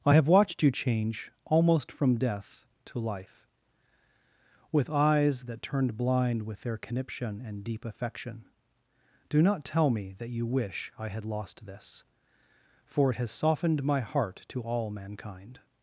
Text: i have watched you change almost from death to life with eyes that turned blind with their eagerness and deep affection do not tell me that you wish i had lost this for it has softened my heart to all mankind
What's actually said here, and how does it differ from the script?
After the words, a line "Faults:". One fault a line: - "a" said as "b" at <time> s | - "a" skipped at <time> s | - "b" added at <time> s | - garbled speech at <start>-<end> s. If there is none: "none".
i have watched you change almost from death to life with eyes that turned blind with their conniption and deep affection do not tell me that you wish i had lost this for it has softened my heart to all mankind
Faults:
- "eagerness" said as "conniption" at 6.8 s